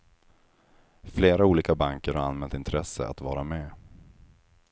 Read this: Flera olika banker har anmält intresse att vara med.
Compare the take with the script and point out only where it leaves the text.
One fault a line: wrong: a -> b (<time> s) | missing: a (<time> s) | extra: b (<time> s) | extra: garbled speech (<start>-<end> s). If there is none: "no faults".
no faults